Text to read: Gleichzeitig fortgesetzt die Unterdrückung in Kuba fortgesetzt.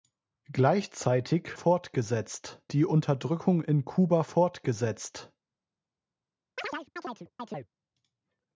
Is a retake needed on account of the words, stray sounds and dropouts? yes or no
yes